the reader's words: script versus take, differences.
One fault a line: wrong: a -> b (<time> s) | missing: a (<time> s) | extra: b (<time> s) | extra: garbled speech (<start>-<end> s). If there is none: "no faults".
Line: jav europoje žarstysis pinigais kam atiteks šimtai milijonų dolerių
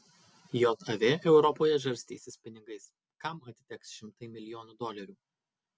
no faults